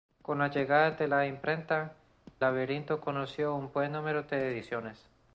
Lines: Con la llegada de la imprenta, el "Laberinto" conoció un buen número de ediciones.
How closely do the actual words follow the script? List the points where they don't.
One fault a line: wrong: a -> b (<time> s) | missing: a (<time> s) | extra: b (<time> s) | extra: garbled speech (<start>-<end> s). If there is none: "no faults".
missing: el (1.9 s)